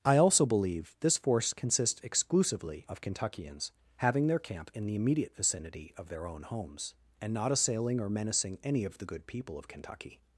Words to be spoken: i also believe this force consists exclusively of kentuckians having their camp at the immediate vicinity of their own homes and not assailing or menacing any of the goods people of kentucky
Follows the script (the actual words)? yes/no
no